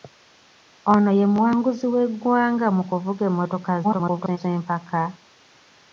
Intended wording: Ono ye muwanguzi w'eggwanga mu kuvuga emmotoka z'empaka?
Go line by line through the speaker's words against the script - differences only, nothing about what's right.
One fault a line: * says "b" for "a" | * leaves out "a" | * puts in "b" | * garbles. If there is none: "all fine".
* garbles